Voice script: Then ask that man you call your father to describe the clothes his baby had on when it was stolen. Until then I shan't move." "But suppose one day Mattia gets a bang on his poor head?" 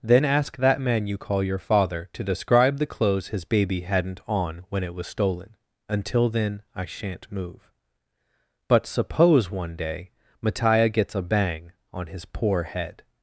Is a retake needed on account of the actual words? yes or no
yes